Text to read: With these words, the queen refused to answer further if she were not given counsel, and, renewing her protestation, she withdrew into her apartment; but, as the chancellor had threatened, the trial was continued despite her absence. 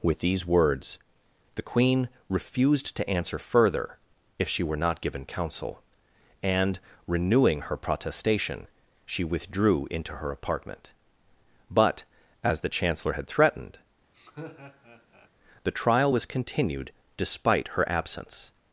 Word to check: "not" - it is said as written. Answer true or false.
true